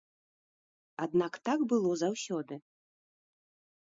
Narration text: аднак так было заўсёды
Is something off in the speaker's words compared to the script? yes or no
no